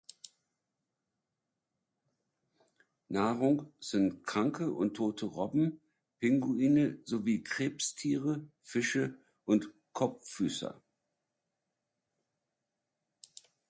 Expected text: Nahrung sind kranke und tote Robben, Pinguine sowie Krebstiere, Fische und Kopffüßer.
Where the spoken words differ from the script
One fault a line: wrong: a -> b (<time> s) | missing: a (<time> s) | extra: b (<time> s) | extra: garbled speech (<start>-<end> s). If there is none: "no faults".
no faults